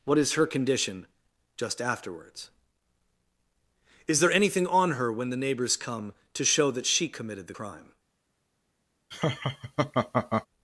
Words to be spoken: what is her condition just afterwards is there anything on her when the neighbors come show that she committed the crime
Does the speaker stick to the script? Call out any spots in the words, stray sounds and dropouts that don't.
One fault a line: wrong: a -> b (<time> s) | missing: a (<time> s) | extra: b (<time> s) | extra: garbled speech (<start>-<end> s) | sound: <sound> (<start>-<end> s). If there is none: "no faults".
extra: to (6.3 s)
sound: laugh (9.1-10.5 s)